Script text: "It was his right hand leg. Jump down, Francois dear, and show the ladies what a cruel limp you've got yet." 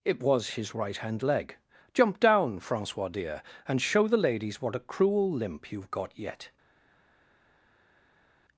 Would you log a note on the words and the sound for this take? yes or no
no